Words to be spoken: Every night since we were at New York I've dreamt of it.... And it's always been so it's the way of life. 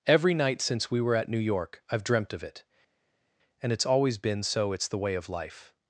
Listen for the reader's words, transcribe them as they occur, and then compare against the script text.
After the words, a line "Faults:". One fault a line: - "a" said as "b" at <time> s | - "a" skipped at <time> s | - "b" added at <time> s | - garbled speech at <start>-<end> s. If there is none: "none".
Every night since we were at New York I've dreamt of it.... And it's always been so it's the way of life.
Faults:
none